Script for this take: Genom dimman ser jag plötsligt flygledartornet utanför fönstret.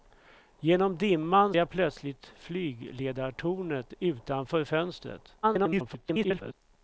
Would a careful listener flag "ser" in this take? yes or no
yes